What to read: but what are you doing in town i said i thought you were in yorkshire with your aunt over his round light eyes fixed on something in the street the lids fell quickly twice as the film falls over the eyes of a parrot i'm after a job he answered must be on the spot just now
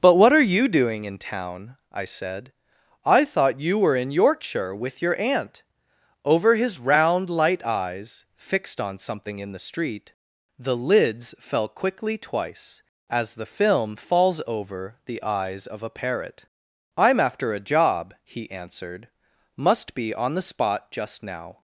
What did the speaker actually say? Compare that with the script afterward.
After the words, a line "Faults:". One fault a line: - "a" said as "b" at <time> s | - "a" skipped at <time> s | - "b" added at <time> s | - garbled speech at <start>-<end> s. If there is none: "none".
but what are you doing in town i said i thought you were in yorkshire with your aunt over his round light eyes fixed on something in the street the lids fell quickly twice as the film falls over the eyes of a parrot i'm after a job he answered must be on the spot just now
Faults:
none